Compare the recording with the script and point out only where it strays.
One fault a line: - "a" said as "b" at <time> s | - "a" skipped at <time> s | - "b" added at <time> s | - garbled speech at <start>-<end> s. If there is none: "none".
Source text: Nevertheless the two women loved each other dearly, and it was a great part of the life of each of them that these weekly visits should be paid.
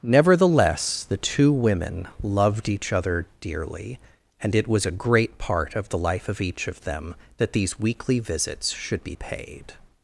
none